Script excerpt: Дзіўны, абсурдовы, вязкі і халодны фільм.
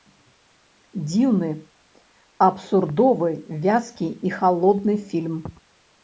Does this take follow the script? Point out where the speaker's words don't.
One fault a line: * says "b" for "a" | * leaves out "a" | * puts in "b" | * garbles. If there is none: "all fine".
all fine